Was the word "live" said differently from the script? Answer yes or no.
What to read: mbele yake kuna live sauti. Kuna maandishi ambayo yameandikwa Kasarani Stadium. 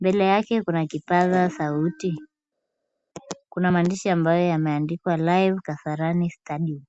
yes